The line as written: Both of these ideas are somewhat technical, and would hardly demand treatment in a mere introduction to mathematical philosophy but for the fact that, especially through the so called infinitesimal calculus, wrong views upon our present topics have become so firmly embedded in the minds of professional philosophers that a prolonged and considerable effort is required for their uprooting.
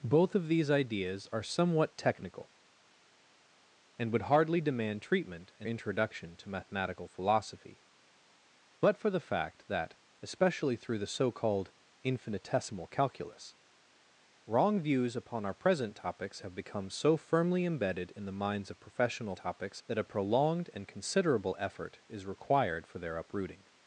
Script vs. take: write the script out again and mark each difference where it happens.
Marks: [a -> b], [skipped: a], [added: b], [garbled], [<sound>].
Both of these ideas are somewhat technical, and would hardly demand treatment in [skipped: a mere] introduction to mathematical philosophy but for the fact that, especially through the so called infinitesimal calculus, wrong views upon our present topics have become so firmly embedded in the minds of professional [philosophers -> topics] that a prolonged and considerable effort is required for their uprooting.